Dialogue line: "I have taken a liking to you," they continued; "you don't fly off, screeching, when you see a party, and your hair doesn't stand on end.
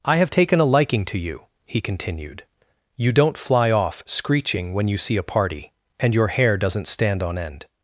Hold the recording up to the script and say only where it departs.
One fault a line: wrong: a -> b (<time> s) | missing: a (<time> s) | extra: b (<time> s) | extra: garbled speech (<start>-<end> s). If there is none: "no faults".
wrong: they -> he (1.7 s)